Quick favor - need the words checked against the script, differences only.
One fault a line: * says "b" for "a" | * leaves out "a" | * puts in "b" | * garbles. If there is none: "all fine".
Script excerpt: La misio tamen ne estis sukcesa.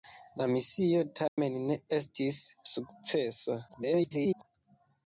* garbles